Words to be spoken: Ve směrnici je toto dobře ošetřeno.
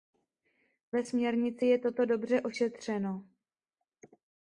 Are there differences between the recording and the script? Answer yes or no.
no